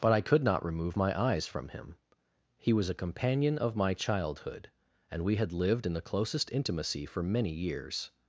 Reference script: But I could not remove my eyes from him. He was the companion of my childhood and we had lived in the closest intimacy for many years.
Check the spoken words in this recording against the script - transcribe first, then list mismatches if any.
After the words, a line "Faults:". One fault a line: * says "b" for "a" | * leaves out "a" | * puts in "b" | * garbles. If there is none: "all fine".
But I could not remove my eyes from him. He was a companion of my childhood and we had lived in the closest intimacy for many years.
Faults:
* says "a" for "the"